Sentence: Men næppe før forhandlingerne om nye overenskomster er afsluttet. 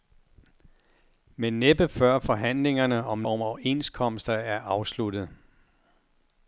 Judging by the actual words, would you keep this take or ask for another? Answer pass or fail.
fail